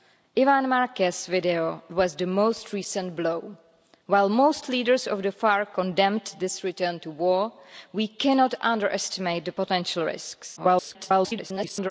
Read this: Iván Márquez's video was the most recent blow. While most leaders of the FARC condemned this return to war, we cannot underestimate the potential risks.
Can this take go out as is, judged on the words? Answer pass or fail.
fail